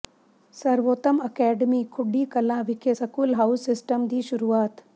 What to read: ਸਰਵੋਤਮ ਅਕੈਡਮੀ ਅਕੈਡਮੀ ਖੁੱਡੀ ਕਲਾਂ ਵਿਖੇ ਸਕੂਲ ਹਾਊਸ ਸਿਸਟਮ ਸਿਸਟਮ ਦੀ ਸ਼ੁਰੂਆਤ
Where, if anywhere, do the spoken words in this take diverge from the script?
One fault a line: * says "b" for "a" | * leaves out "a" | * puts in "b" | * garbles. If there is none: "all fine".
* leaves out "ਅਕੈਡਮੀ"
* leaves out "ਸਿਸਟਮ"